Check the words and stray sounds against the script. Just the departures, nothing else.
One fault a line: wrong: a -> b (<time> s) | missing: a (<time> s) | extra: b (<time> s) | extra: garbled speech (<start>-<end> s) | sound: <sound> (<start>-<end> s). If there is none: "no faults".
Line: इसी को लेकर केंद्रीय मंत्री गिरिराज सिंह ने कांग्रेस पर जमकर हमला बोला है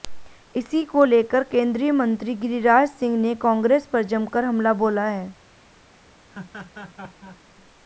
sound: laugh (6.3-7.4 s)